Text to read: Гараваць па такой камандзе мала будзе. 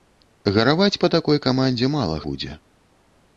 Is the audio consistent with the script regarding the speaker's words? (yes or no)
yes